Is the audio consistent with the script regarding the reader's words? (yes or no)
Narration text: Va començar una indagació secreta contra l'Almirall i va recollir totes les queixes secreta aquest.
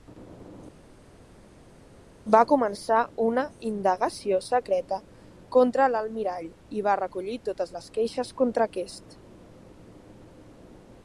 no